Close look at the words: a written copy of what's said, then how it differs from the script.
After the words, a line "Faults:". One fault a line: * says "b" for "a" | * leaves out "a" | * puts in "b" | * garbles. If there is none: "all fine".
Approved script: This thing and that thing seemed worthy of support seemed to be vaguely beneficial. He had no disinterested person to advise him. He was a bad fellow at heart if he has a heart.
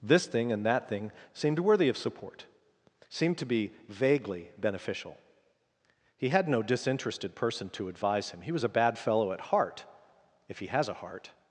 This thing and that thing seemed worthy of support seemed to be vaguely beneficial. He had no disinterested person to advise him. He was a bad fellow at heart if he has a heart.
Faults:
all fine